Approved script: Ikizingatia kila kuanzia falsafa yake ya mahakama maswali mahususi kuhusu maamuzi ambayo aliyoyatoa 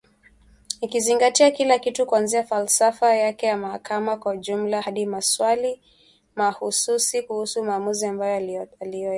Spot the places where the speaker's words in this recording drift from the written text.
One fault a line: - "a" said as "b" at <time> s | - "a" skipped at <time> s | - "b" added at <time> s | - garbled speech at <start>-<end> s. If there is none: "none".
- "kitu" added at 1.8 s
- "kwa ujumla hadi" added at 4.2 s